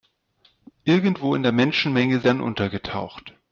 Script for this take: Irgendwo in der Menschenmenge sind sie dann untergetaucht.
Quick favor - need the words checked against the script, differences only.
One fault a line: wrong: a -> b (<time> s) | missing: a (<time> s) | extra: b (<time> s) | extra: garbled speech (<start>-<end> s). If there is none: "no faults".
missing: sind sie (2.2 s)